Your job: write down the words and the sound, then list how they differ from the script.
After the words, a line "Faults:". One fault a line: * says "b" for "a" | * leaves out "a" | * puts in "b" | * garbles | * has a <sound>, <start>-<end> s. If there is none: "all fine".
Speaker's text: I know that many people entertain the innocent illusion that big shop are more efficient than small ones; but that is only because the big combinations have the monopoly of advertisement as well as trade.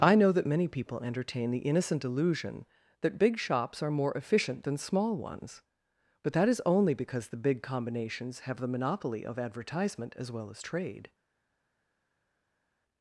I know that many people entertain the innocent illusion that big shops are more efficient than small ones; but that is only because the big combinations have the monopoly of advertisement as well as trade.
Faults:
* says "shops" for "shop"